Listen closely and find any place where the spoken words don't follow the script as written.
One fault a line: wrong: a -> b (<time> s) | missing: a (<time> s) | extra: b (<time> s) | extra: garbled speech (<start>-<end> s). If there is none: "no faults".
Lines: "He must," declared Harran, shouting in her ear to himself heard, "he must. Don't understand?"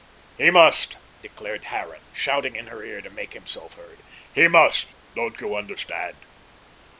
extra: make (3.1 s)
extra: you (5.4 s)